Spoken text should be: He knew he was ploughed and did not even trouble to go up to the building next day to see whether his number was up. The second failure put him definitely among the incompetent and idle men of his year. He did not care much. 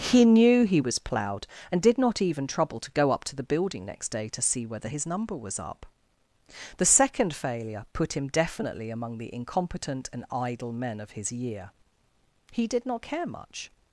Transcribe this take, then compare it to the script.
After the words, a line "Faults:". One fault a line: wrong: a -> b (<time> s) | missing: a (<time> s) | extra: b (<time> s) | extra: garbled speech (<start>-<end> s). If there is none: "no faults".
He knew he was ploughed and did not even trouble to go up to the building next day to see whether his number was up. The second failure put him definitely among the incompetent and idle men of his year. He did not care much.
Faults:
no faults